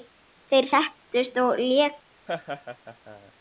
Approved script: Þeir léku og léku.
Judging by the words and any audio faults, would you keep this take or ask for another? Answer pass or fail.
fail